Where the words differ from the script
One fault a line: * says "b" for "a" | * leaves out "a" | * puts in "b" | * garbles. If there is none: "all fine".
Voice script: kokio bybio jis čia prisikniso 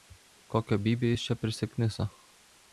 all fine